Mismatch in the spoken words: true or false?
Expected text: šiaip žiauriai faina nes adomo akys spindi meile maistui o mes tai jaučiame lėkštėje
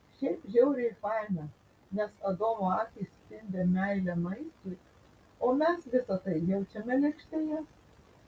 true